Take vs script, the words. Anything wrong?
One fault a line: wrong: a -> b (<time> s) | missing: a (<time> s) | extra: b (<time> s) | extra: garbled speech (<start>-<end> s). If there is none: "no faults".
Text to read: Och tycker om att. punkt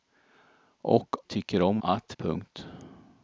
no faults